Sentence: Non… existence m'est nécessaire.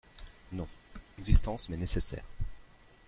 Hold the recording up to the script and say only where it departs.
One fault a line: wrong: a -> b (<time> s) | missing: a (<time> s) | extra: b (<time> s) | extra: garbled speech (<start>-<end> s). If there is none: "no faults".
no faults